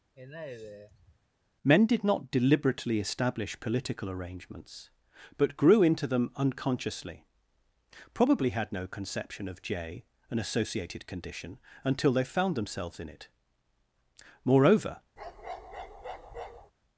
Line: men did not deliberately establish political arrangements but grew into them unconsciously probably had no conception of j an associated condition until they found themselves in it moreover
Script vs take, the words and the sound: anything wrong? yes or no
yes